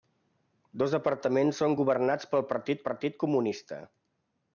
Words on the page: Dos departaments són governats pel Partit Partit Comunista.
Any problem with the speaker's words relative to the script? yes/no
no